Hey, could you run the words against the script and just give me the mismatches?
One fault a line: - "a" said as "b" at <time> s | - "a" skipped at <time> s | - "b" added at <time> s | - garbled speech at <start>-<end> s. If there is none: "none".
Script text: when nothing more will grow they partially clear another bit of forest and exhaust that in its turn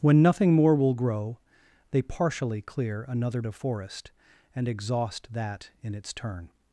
- "bit" skipped at 3.4 s